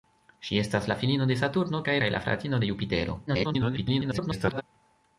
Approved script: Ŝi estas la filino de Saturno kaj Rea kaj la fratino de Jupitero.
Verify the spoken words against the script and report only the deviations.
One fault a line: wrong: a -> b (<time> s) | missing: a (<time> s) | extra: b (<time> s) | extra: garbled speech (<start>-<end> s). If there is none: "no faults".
missing: Rea (2.0 s)
extra: garbled speech (3.3-4.6 s)